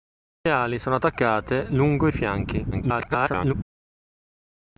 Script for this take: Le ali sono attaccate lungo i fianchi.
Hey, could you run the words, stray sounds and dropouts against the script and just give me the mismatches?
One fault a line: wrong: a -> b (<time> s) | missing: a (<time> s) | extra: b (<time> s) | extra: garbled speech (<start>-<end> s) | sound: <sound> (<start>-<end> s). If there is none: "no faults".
extra: garbled speech (2.7-3.5 s)